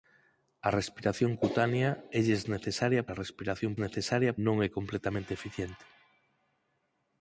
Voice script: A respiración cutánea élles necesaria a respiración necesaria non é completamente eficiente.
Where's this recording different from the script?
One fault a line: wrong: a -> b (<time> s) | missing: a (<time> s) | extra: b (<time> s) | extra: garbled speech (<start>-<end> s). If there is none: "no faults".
no faults